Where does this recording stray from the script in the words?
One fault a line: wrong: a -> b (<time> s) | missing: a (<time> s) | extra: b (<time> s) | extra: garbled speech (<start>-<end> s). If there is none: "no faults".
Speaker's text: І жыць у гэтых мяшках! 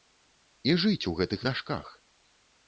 no faults